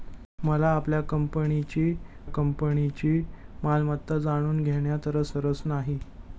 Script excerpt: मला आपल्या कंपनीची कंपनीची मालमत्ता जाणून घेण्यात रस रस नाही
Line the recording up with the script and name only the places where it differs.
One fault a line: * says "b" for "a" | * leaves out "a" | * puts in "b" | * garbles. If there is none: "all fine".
all fine